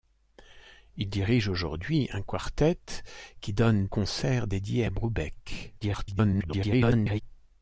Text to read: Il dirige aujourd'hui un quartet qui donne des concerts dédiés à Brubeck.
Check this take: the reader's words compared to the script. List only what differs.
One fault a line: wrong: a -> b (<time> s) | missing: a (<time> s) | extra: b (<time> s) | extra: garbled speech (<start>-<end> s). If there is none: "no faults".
missing: des (3.9 s)
extra: garbled speech (5.8-7.2 s)